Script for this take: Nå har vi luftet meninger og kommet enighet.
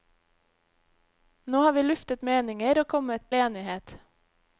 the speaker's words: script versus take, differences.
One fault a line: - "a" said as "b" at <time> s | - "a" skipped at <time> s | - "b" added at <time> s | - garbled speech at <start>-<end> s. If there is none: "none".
none